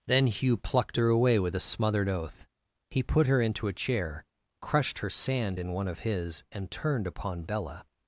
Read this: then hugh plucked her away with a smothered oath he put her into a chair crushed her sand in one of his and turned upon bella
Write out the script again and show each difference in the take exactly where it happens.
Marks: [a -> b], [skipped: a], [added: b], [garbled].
then hugh plucked her away with a smothered oath he put her into a chair crushed her sand in one of his and turned upon bella